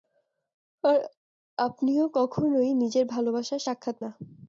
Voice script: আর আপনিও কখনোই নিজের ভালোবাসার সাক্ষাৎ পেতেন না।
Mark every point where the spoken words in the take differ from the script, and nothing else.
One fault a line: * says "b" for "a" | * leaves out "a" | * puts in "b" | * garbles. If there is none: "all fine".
* leaves out "পেতেন"